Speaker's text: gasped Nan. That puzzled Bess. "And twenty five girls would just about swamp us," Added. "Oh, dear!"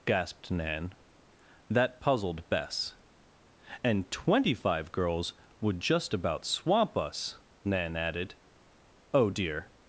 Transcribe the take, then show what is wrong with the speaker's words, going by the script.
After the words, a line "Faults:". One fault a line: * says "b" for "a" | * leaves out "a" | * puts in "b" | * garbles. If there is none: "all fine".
gasped Nan. That puzzled Bess. "And twenty five girls would just about swamp us," Nan added. "Oh, dear!"
Faults:
* puts in "Nan"